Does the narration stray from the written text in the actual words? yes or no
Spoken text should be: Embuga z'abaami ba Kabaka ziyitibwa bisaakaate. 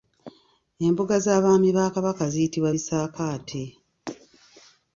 no